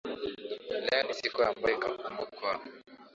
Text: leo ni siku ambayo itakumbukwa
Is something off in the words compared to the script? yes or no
no